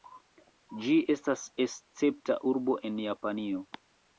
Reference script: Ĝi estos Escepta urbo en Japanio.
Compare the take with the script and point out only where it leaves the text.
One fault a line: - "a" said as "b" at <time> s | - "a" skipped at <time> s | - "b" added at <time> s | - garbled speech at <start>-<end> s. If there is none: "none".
- "estos" said as "estas" at 1.1 s